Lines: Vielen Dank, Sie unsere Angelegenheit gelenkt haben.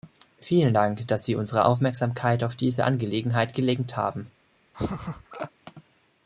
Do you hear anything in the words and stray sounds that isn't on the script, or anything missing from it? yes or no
yes